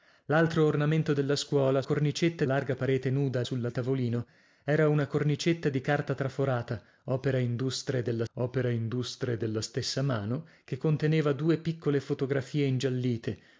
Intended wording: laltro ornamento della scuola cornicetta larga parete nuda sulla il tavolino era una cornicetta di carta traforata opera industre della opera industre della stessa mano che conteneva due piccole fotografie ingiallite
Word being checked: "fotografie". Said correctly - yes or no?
yes